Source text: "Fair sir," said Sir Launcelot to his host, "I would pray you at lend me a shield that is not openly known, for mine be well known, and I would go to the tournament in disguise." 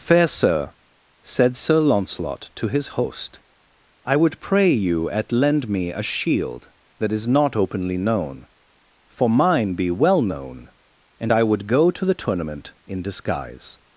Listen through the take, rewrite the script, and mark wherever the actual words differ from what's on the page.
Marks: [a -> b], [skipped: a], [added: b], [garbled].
"Fair sir," said Sir Launcelot to his host, "I would pray you at lend me a shield that is not openly known, for mine be well known, and I would go to the tournament in disguise."